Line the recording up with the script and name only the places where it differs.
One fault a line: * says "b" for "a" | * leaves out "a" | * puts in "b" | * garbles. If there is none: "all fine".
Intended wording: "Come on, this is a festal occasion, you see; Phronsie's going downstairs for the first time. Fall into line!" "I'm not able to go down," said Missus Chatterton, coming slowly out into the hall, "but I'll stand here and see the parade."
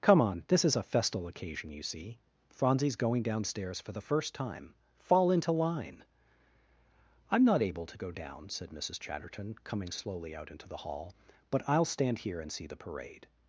all fine